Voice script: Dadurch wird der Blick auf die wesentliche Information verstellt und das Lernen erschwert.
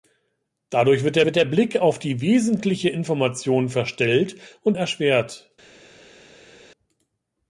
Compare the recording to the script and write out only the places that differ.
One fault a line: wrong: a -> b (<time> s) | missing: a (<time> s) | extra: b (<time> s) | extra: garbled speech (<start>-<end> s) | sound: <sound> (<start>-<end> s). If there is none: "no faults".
extra: wird der (1.2 s)
missing: das Lernen (4.8 s)